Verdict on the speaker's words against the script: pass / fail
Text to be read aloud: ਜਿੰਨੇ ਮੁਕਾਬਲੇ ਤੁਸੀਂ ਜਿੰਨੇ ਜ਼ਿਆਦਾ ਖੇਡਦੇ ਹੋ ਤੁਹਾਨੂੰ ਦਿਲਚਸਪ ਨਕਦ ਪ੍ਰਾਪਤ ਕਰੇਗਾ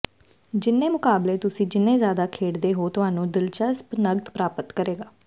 pass